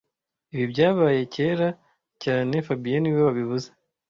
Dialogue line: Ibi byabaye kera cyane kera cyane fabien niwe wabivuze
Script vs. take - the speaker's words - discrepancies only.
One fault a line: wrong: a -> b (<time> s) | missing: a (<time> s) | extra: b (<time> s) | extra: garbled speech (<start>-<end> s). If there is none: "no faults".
missing: kera cyane (2.5 s)